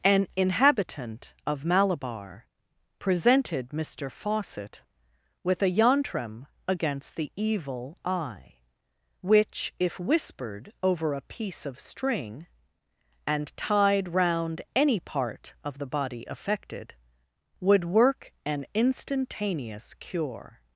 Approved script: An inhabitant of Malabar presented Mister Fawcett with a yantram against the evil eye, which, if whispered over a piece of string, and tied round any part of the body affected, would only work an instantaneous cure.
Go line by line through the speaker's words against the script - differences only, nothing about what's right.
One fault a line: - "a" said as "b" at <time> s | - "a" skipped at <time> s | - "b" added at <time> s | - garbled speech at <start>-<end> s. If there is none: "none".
- "only" skipped at 17.9 s